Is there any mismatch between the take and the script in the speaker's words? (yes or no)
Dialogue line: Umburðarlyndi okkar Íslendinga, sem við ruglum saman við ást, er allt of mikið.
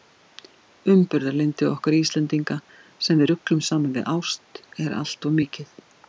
no